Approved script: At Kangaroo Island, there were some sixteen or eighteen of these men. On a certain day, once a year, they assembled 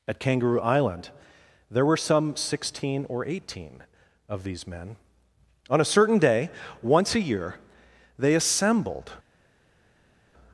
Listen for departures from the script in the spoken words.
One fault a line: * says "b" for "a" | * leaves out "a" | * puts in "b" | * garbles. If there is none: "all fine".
all fine